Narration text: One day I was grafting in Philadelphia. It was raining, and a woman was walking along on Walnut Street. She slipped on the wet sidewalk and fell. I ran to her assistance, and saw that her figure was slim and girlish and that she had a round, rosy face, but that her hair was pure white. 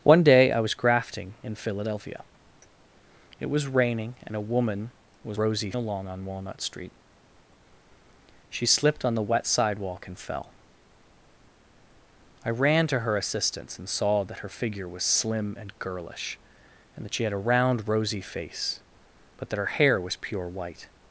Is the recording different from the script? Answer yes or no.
yes